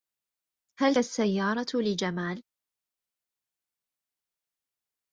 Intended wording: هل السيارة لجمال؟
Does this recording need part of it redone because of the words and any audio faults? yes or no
no